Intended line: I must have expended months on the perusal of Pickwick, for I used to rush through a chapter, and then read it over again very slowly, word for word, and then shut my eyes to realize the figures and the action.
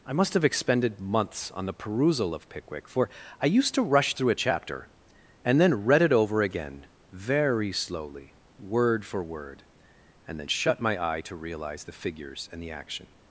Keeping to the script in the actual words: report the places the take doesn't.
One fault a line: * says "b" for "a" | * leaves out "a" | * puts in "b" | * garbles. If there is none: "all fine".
* says "eye" for "eyes"